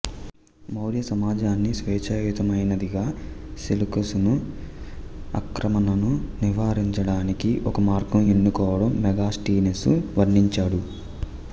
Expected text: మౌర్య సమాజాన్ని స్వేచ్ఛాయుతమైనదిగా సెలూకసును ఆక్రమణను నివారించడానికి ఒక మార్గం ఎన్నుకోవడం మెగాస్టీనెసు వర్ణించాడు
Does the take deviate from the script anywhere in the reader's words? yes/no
no